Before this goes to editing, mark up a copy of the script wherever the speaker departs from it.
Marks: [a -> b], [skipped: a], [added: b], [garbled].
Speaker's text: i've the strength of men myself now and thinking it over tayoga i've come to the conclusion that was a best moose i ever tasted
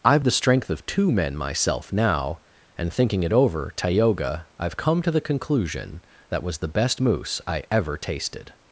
i've the strength of [added: two] men myself now and thinking it over tayoga i've come to the conclusion that was [a -> the] best moose i ever tasted